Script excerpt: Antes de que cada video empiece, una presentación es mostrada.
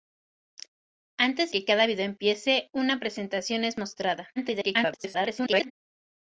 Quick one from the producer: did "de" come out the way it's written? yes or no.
no